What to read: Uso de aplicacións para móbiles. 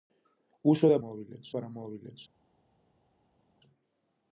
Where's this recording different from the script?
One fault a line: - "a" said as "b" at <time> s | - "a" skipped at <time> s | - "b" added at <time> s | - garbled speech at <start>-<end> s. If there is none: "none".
- "aplicacións" said as "móbiles" at 1.0 s